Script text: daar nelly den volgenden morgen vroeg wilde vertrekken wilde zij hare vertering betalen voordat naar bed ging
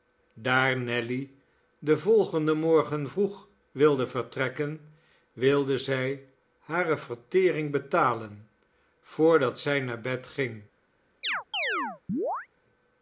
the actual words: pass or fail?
fail